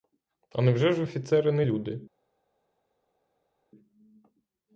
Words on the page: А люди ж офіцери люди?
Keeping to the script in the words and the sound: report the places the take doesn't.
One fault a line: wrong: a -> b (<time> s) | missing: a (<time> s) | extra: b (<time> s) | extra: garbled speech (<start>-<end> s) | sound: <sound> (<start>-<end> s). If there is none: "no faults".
wrong: люди -> невже (0.6 s)
extra: не (1.5 s)